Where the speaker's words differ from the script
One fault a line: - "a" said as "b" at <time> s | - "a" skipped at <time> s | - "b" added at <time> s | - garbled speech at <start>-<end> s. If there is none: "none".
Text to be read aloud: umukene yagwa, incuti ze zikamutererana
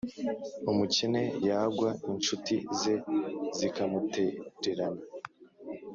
none